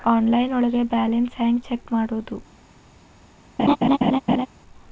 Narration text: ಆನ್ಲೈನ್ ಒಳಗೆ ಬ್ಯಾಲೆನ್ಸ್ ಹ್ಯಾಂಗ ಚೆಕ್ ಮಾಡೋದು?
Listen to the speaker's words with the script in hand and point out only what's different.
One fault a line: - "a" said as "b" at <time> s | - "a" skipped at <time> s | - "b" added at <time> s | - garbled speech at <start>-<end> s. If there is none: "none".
none